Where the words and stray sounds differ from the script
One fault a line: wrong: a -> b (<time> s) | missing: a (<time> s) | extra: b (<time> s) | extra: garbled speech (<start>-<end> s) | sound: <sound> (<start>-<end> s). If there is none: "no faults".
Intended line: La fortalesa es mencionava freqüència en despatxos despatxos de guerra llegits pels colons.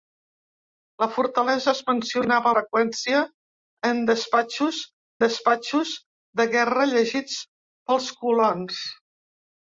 no faults